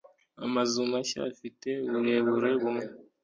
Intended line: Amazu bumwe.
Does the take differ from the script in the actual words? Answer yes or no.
yes